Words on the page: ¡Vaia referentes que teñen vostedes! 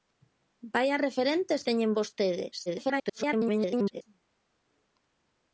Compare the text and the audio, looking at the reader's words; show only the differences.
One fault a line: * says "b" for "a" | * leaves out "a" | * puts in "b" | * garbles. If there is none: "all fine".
* leaves out "que"
* garbles